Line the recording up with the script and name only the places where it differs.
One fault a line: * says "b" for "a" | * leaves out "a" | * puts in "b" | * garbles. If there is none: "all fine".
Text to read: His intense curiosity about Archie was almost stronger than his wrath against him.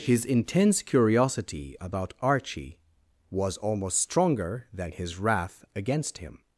all fine